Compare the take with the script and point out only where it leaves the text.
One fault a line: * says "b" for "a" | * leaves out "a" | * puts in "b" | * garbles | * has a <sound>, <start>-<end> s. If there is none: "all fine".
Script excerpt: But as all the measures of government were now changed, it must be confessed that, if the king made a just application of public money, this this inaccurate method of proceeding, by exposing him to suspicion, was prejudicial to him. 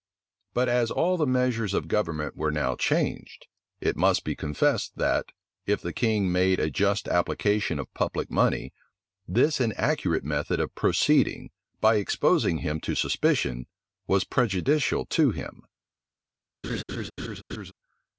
* leaves out "this"
* has a laugh, 16.6-17.7 s